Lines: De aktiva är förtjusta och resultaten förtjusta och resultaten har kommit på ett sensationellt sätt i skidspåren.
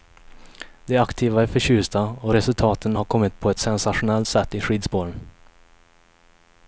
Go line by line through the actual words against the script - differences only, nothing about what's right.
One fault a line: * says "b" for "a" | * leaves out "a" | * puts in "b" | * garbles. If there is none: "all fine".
* leaves out "förtjusta och resultaten"